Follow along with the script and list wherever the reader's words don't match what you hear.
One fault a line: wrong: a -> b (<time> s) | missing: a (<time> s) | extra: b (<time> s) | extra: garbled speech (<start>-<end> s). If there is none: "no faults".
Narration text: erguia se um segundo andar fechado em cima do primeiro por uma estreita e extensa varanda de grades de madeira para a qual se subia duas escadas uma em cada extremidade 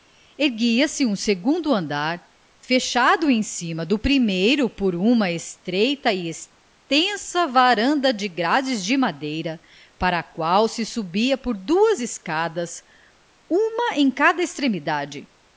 extra: por (11.4 s)